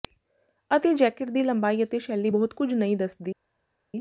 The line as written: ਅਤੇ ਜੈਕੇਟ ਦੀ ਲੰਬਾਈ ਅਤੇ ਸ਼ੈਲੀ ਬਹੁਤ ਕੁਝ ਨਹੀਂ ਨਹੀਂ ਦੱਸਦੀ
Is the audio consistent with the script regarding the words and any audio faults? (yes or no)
no